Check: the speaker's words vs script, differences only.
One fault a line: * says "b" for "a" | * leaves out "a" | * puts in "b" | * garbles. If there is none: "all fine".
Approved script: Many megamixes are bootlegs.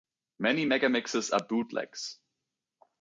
all fine